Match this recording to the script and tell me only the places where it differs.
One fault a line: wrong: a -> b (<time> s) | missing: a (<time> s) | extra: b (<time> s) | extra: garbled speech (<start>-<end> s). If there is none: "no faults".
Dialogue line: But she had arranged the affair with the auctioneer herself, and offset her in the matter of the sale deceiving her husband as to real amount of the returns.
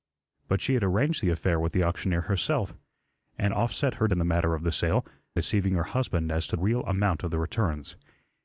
no faults